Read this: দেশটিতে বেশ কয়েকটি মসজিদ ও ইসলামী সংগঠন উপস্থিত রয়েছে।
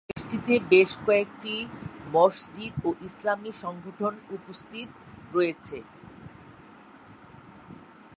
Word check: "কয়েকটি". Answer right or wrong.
right